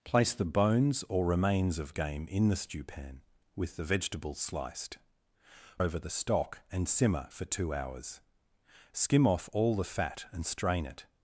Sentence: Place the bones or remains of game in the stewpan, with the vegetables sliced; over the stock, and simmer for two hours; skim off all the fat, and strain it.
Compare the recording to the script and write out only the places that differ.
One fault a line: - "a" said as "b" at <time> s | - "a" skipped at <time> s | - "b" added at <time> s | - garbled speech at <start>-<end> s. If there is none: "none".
none